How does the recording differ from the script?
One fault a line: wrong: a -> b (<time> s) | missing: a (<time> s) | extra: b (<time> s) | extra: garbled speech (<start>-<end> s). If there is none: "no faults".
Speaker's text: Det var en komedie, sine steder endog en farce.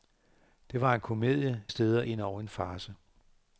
missing: sine (1.6 s)